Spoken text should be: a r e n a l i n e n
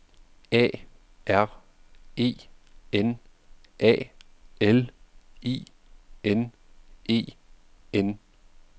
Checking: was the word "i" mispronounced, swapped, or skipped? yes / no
no